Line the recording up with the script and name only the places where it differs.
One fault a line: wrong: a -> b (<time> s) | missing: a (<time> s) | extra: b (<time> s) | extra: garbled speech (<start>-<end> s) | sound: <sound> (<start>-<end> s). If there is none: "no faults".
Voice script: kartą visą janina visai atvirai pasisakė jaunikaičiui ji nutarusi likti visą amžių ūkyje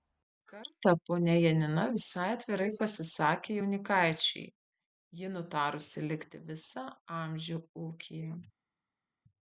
wrong: visą -> ponia (1.1 s)